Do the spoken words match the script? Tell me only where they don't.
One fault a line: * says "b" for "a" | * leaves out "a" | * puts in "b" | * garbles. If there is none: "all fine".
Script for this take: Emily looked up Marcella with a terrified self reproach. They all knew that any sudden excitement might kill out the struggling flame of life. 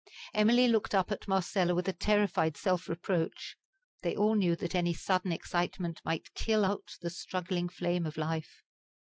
* puts in "at"